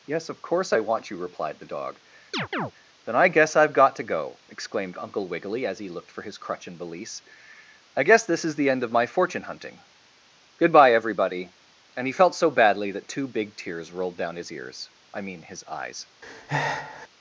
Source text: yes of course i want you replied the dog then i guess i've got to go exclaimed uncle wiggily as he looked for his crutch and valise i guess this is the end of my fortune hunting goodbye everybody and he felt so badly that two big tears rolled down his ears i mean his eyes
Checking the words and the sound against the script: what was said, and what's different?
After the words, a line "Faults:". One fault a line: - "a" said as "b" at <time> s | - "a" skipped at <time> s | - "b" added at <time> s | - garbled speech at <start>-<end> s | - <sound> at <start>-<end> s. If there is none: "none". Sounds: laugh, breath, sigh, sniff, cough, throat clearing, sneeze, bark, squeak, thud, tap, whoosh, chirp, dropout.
yes of course i want you replied the dog then i guess i've got to go exclaimed uncle wiggily as he looked for his crutch and valise i guess this is the end of my fortune hunting goodbye everybody and he felt so badly that two big tears rolled down his ears i mean his eyes
Faults:
- chirp at 2.3-2.7 s
- breath at 16.2-17.1 s